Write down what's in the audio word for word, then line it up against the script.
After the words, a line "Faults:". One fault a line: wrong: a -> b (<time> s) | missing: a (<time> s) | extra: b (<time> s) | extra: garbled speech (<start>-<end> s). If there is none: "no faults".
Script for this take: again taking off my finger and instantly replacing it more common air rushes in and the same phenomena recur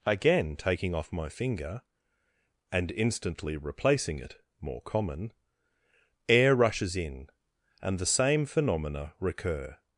again taking off my finger and instantly replacing it more common air rushes in and the same phenomena recur
Faults:
no faults